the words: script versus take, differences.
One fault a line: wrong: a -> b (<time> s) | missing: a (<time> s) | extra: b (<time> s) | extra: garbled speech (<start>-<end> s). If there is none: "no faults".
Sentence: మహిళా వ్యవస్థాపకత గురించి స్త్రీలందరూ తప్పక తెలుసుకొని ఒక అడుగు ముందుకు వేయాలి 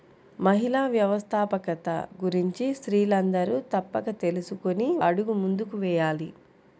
missing: ఒక (4.9 s)